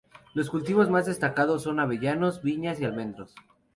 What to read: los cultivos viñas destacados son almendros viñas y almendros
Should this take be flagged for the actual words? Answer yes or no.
yes